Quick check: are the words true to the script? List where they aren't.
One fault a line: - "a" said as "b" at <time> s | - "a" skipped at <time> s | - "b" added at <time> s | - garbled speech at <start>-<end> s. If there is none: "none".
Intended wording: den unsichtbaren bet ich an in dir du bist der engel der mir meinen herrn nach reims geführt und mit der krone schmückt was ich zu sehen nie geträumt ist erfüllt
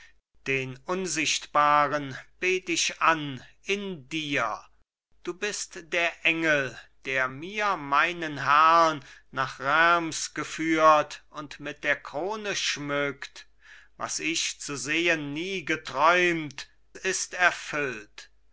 none